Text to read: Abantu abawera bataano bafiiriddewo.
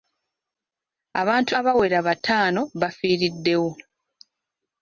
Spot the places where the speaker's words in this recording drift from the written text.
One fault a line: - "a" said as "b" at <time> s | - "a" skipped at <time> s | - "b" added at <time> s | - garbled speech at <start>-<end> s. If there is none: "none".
none